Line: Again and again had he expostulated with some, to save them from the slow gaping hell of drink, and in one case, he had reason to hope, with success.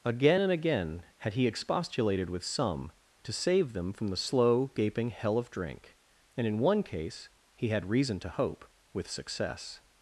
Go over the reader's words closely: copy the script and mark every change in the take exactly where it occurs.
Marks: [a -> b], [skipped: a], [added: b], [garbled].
Again and again had he expostulated with some, to save them from the slow gaping hell of drink, and in one case, he had reason to hope, with success.